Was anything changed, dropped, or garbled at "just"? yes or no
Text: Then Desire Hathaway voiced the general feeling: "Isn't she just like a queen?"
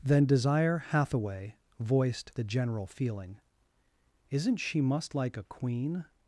yes